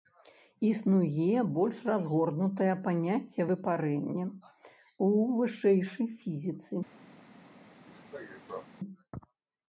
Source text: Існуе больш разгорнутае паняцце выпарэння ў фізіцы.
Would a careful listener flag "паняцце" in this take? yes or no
no